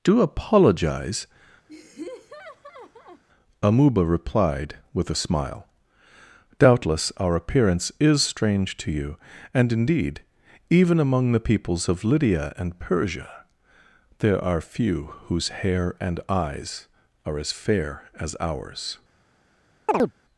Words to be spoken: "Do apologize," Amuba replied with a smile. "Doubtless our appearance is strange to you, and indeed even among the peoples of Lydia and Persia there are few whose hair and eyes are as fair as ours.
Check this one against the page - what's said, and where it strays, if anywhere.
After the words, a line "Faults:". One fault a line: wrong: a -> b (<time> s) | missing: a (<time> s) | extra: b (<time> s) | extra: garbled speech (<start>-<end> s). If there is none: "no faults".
"Do apologize," Amuba replied with a smile. "Doubtless our appearance is strange to you, and indeed even among the peoples of Lydia and Persia there are few whose hair and eyes are as fair as ours.
Faults:
no faults